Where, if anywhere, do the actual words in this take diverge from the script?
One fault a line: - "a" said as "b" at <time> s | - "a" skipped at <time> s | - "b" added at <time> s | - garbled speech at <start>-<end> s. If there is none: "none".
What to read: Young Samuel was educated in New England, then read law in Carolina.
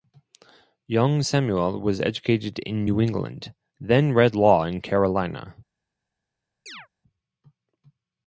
none